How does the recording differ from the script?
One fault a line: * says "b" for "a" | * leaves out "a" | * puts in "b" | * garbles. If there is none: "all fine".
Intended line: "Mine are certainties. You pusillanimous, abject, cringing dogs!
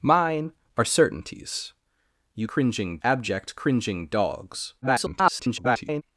* says "cringing" for "pusillanimous"
* garbles